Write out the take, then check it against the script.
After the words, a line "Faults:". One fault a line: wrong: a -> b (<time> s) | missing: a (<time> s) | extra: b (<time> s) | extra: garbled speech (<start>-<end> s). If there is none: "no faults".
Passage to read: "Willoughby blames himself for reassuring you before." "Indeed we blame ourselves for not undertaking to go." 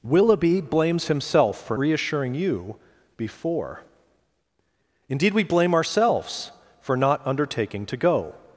"Willoughby blames himself for reassuring you before." "Indeed we blame ourselves for not undertaking to go."
Faults:
no faults